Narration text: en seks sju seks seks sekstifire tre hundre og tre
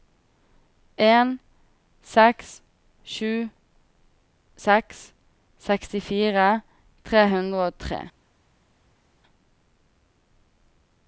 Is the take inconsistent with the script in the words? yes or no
yes